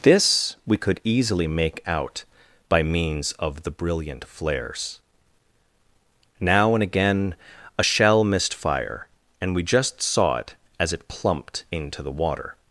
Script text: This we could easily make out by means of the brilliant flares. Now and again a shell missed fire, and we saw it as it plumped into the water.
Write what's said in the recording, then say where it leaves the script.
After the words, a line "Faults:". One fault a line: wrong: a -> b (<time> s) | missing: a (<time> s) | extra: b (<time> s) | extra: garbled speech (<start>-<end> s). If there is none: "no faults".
This we could easily make out by means of the brilliant flares. Now and again a shell missed fire, and we just saw it as it plumped into the water.
Faults:
extra: just (9.6 s)